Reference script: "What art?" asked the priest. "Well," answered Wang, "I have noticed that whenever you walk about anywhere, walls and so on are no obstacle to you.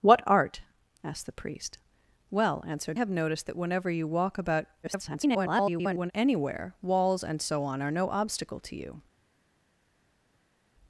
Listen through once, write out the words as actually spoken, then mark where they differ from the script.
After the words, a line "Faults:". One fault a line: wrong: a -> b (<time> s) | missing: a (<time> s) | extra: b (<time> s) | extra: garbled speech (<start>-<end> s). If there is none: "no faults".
"What art?" asked the priest. "Well," answered Have noticed that whenever you walk about [garbled] anywhere, walls and so on are no obstacle to you.
Faults:
missing: Wang I (3.0 s)
extra: garbled speech (4.8-6.1 s)